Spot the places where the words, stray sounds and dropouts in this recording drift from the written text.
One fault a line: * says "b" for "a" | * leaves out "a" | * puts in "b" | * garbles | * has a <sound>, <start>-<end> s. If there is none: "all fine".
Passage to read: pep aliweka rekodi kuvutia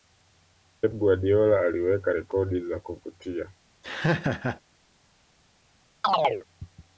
* puts in "guardiola"
* puts in "za"
* has a laugh, 3.8-4.6 s
* has a chirp, 6.0-6.4 s